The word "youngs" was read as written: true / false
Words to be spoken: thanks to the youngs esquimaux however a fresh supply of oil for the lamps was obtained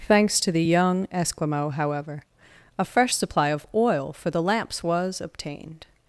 false